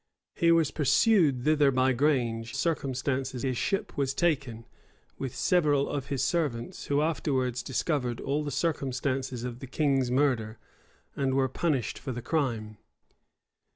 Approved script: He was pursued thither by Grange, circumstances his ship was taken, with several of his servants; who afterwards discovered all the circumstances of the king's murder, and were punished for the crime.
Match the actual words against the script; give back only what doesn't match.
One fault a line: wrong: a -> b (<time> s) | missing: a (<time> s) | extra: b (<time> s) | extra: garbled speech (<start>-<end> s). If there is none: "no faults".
no faults